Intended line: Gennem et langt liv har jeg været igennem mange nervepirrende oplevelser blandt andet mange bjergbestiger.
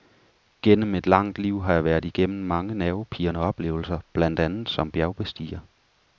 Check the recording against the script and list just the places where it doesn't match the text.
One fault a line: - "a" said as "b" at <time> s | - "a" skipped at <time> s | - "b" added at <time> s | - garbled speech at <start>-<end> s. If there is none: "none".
- "mange" said as "som" at 4.7 s